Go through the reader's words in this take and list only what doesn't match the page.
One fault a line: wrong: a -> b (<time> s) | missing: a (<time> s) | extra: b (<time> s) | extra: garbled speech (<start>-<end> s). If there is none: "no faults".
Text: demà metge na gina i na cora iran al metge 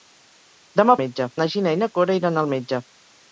no faults